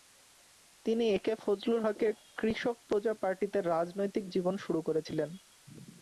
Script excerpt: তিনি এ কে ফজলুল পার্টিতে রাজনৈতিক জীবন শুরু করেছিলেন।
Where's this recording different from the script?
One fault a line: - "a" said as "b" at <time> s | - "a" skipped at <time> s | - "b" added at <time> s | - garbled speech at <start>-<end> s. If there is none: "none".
- "হকের কৃষক প্রজা" added at 1.8 s